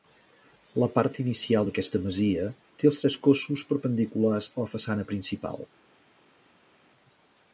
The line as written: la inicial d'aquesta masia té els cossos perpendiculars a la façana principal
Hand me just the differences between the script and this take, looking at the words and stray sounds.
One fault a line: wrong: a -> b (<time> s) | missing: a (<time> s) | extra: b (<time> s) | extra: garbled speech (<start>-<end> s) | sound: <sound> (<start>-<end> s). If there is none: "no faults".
extra: part (0.9 s)
extra: tres (3.0 s)